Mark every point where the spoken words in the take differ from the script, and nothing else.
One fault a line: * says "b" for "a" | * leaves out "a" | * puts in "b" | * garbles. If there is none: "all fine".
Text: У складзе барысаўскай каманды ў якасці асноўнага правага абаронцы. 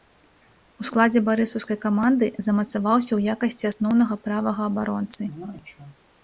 * puts in "замацаваўся"